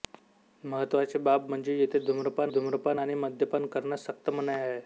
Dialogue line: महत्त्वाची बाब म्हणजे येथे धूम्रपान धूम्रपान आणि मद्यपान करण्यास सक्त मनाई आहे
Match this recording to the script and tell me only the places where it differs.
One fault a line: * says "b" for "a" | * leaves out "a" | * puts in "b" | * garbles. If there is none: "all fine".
all fine